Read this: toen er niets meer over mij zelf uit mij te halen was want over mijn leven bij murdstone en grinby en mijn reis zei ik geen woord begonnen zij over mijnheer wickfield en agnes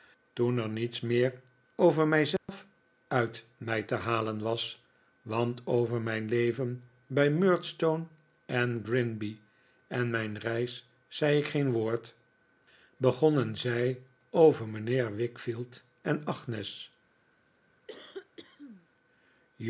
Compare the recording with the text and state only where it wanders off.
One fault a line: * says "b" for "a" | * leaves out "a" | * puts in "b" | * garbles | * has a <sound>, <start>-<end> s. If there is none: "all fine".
* has a dropout, 2.4-2.5 s
* has a cough, 17.9-18.9 s